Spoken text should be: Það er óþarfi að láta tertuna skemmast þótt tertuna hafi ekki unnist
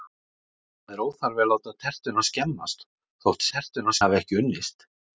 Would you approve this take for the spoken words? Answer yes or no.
yes